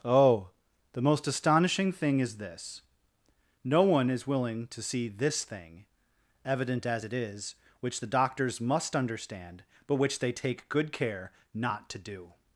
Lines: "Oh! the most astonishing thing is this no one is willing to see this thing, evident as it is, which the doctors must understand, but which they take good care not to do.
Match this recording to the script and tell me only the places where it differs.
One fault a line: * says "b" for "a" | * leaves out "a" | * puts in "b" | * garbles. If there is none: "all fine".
all fine